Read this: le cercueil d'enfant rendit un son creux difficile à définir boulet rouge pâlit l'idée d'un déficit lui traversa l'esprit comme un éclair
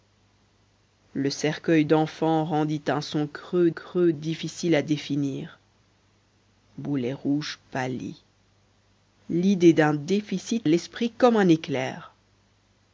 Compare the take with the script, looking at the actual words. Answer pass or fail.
fail